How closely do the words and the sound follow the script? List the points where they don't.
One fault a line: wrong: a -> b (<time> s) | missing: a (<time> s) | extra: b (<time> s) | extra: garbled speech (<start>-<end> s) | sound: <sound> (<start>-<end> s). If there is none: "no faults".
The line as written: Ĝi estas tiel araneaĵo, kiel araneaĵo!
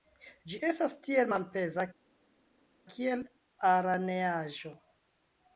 wrong: araneaĵo -> malpeza (1.3 s)